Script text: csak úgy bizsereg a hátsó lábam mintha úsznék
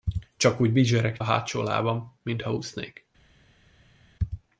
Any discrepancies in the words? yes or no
no